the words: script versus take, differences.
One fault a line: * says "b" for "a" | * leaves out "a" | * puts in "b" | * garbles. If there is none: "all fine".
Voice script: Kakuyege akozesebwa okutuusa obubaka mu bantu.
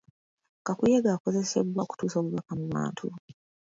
all fine